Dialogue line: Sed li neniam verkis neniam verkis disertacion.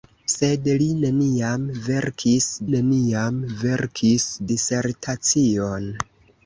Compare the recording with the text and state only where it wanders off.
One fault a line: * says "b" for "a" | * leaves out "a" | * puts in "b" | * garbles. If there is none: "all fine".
all fine